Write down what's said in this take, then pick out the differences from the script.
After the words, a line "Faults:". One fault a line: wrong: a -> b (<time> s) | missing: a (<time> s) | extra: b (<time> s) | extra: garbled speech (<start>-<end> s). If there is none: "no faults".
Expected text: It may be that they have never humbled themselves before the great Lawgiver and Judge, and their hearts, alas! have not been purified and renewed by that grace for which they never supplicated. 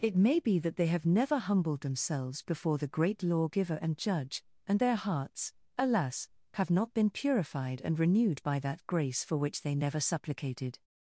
It may be that they have never humbled themselves before the great Lawgiver and Judge, and their hearts, alas! have not been purified and renewed by that grace for which they never supplicated.
Faults:
no faults